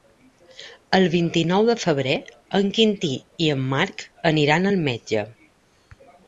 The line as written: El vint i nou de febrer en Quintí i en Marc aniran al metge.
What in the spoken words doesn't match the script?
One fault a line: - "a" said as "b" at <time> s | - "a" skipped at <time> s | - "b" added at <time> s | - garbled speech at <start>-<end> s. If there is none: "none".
none